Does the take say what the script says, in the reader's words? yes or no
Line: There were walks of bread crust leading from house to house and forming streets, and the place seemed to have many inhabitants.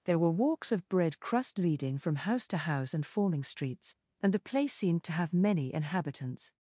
yes